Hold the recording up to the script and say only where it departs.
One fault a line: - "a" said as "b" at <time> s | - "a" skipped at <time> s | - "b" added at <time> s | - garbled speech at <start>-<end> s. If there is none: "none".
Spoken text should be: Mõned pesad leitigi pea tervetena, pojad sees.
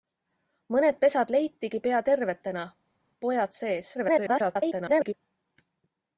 - garbled speech at 3.9-5.1 s